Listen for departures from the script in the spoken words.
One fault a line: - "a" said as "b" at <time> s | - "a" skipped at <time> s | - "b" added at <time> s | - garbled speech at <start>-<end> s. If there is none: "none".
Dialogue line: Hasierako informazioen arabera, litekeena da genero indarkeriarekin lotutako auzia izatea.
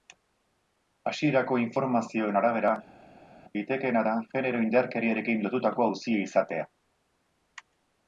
none